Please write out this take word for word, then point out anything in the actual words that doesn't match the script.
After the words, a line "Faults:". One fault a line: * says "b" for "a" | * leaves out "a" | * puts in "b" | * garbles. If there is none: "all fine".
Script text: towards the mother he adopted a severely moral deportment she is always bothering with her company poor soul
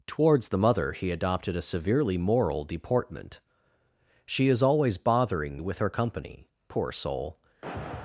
towards the mother he adopted a severely moral deportment she is always bothering with her company poor soul
Faults:
all fine